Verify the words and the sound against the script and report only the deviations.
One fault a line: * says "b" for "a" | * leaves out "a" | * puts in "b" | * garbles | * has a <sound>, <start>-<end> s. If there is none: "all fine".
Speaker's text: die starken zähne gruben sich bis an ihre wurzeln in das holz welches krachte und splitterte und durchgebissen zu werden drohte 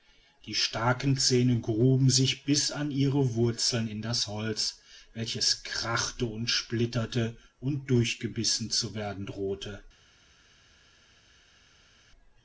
all fine